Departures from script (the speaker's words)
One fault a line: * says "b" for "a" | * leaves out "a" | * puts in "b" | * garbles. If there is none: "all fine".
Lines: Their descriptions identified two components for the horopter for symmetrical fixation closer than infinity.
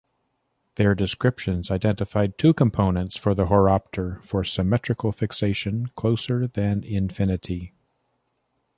all fine